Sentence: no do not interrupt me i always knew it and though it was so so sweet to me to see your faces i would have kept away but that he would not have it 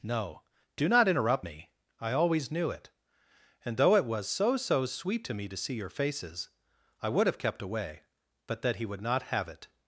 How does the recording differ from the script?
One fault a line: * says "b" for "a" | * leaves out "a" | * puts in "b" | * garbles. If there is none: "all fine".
all fine